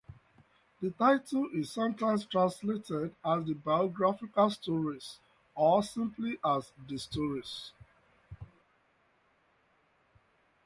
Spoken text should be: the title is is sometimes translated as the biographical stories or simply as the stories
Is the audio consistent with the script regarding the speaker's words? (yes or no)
no